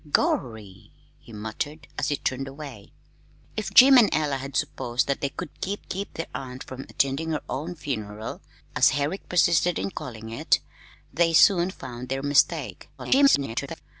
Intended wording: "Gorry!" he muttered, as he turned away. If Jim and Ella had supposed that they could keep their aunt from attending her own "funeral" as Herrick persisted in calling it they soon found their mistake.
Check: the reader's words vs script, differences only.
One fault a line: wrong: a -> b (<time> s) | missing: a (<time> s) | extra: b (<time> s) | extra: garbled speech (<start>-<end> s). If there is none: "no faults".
extra: keep (5.9 s)
extra: garbled speech (13.0-13.8 s)